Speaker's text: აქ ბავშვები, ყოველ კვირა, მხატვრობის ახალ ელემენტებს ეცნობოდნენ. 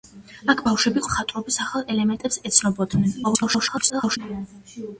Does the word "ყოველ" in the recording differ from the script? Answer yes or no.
yes